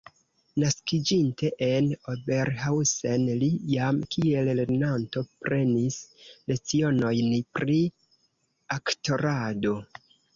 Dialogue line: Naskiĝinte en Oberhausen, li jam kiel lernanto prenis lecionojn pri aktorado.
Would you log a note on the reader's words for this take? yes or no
no